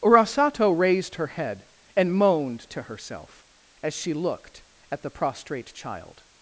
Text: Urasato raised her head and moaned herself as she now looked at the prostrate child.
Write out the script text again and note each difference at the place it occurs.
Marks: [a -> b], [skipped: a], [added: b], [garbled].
Urasato raised her head and moaned [added: to] herself as she [skipped: now] looked at the prostrate child.